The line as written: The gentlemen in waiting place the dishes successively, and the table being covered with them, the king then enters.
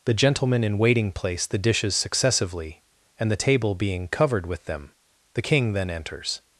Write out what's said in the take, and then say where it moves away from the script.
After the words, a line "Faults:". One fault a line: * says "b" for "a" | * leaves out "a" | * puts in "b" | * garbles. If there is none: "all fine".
The gentlemen in waiting place the dishes successively, and the table being covered with them, the king then enters.
Faults:
all fine